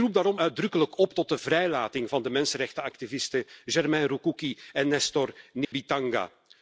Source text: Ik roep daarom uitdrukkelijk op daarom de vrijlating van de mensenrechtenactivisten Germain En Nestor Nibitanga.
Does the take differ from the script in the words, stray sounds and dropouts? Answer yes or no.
yes